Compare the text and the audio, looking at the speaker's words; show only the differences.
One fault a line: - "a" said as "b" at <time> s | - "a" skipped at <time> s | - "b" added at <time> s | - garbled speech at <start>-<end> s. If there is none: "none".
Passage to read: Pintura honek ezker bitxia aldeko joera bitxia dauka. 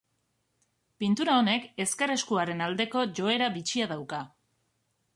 - "bitxia" said as "eskuaren" at 2.1 s